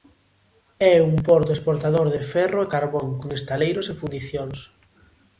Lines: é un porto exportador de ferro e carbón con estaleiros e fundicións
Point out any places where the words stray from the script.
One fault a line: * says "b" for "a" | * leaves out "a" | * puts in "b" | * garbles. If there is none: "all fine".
all fine